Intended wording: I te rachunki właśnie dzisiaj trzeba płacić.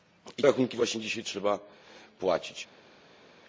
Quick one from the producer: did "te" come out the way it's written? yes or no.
no